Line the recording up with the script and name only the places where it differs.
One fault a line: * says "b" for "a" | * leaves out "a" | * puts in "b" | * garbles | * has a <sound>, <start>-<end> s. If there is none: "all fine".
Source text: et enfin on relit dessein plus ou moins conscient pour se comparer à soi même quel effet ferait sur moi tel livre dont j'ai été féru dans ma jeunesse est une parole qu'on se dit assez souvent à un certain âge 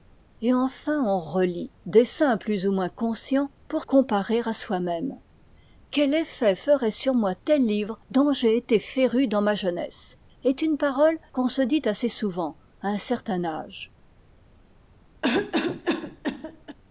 * leaves out "se"
* has a cough, 15.2-16.8 s